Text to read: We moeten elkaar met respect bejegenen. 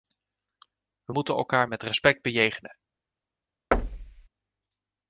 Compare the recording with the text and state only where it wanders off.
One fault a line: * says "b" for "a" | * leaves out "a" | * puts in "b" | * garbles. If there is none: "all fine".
all fine